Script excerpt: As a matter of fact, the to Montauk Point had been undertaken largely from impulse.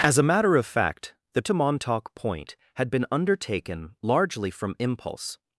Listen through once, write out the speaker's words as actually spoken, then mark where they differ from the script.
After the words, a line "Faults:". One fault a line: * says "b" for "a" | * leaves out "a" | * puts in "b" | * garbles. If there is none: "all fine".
As a matter of fact, the to Montauk Point had been undertaken largely from impulse.
Faults:
all fine